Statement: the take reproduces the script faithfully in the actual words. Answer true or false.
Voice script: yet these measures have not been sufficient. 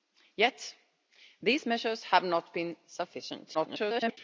false